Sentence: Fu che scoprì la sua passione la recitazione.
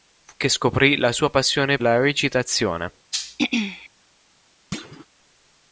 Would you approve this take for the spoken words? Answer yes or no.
yes